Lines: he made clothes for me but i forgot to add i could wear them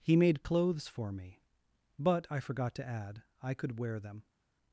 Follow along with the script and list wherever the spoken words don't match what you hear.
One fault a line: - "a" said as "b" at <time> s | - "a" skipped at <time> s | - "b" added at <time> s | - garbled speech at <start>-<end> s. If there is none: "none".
none